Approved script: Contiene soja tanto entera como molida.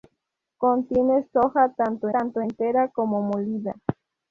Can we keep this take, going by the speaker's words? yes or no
no